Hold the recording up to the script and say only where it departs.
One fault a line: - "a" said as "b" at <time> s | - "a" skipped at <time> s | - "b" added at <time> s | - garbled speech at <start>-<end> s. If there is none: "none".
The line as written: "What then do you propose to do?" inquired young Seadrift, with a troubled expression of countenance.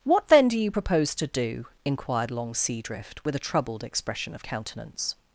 - "young" said as "long" at 2.3 s